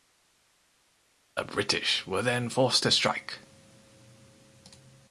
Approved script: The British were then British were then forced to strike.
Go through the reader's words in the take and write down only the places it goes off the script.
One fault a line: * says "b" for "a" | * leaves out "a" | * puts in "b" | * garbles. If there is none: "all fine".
* leaves out "British were then"